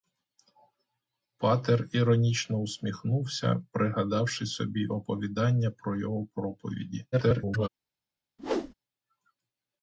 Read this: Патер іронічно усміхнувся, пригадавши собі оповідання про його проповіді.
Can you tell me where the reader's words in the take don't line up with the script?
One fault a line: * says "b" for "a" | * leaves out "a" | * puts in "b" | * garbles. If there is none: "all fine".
* garbles